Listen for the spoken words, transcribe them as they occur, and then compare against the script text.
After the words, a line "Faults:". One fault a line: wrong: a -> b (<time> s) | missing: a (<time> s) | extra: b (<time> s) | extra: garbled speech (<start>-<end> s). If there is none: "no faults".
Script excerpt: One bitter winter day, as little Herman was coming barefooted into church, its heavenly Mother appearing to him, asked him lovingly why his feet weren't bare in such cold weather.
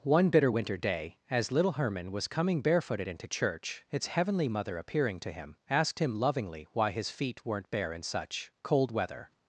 One bitter winter day, as little Herman was coming barefooted into church, its heavenly Mother appearing to him, asked him lovingly why his feet weren't bare in such cold weather.
Faults:
no faults